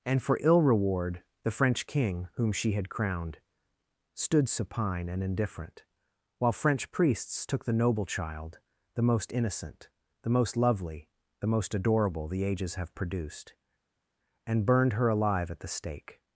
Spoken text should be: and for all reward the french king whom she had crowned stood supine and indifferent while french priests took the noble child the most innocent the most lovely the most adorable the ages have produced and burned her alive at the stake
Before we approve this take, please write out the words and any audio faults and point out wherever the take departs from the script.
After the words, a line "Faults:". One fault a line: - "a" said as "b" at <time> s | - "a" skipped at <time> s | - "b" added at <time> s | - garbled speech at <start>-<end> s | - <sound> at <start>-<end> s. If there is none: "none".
and for ill reward the french king whom she had crowned stood supine and indifferent while french priests took the noble child the most innocent the most lovely the most adorable the ages have produced and burned her alive at the stake
Faults:
- "all" said as "ill" at 0.4 s